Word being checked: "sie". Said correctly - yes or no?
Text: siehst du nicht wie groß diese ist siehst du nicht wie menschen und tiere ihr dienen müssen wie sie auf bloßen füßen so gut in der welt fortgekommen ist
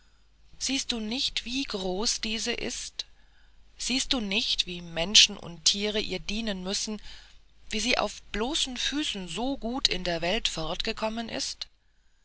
yes